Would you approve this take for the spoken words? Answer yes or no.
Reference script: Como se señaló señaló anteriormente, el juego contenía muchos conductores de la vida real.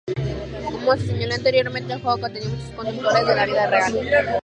no